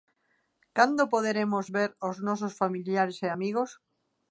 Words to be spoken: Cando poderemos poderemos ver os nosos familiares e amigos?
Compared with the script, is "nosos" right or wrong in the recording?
right